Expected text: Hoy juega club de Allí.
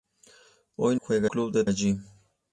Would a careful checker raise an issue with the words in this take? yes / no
no